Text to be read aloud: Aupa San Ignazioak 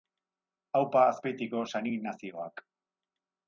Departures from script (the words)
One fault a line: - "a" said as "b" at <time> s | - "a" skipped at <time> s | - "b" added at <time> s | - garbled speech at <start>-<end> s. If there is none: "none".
- "Azpeitiko" added at 1.1 s